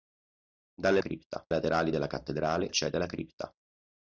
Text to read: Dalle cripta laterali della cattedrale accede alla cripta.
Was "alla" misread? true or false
false